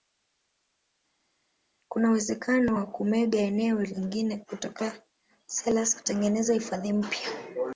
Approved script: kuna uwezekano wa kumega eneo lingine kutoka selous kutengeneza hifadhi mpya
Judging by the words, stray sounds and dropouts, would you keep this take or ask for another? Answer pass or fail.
pass